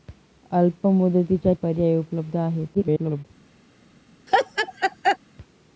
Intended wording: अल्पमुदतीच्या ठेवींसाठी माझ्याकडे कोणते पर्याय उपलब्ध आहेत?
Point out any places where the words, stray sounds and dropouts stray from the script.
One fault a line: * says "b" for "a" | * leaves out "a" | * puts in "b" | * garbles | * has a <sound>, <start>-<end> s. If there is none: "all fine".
* leaves out "ठेवींसाठी माझ्याकडे कोणते"
* garbles
* has a laugh, 4.3-5.2 s